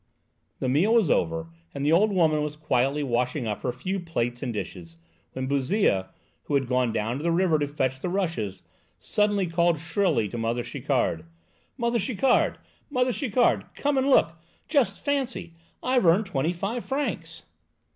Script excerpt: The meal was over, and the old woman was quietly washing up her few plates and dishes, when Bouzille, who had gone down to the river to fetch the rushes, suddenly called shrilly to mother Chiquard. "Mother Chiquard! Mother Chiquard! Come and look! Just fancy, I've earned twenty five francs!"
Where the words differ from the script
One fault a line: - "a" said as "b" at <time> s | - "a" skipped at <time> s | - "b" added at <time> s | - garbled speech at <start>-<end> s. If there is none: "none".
none